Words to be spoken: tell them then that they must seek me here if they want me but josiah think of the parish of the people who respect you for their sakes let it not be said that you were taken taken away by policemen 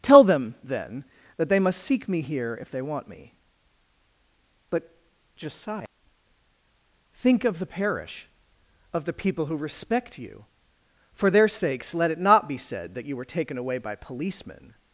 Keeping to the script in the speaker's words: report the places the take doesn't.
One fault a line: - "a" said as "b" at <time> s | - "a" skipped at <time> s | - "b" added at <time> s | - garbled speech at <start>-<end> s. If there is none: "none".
- "taken" skipped at 13.6 s